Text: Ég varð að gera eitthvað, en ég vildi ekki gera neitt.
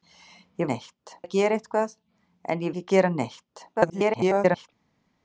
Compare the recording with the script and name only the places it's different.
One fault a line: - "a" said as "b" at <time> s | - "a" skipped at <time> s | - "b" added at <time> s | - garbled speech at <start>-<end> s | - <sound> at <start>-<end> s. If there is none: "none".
- "varð" said as "neitt" at 0.7 s
- "vildi" skipped at 2.8 s
- garbled speech at 3.7-4.7 s